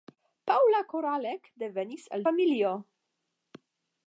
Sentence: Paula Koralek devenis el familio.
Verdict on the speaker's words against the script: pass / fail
pass